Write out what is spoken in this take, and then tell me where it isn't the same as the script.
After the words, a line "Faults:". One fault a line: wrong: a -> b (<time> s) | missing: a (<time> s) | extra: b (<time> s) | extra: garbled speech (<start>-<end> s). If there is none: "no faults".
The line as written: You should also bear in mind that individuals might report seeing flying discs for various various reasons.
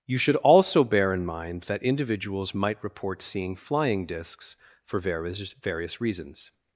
You should also bear in mind that individuals might report seeing flying discs for various various reasons.
Faults:
no faults